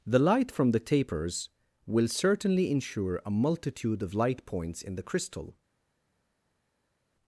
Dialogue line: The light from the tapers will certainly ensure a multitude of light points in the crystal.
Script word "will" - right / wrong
right